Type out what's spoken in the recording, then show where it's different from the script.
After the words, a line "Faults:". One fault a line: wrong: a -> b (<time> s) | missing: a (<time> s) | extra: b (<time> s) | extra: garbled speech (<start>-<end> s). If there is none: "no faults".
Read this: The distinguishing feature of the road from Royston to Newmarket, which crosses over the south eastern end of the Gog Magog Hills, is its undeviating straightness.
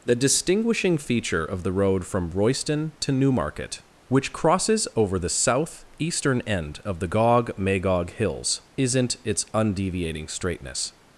The distinguishing feature of the road from Royston to Newmarket, which crosses over the south eastern end of the Gog Magog Hills, isn't its undeviating straightness.
Faults:
wrong: is -> isn't (8.8 s)